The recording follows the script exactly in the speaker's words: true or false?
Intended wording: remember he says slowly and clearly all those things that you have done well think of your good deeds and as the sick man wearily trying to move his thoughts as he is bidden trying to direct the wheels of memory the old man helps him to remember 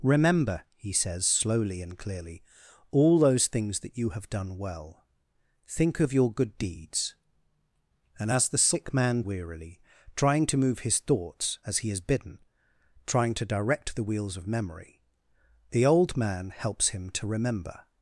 true